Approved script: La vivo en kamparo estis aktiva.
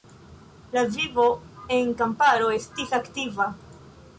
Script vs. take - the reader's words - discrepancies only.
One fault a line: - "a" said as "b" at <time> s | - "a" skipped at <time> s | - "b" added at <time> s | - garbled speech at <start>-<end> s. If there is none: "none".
none